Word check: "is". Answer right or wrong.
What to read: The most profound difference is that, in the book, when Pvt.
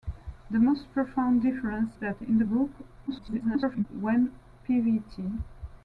wrong